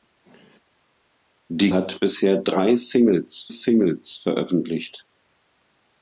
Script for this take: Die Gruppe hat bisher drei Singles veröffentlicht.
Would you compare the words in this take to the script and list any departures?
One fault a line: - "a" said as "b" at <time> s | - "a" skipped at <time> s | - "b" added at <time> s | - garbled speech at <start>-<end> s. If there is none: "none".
- "Gruppe" skipped at 1.7 s
- "Singles" added at 3.5 s